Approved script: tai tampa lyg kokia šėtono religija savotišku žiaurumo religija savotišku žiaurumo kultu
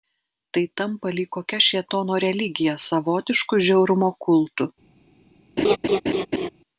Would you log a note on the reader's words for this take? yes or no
yes